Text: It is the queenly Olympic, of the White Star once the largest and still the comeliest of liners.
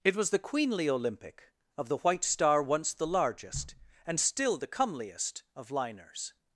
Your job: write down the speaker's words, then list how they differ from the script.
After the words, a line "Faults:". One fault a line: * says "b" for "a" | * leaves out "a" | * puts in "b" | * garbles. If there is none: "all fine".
It was the queenly Olympic, of the White Star once the largest and still the comeliest of liners.
Faults:
* says "was" for "is"